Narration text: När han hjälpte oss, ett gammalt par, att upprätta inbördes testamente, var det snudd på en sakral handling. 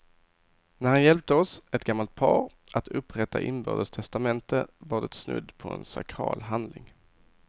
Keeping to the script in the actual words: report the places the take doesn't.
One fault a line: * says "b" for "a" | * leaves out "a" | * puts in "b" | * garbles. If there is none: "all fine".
all fine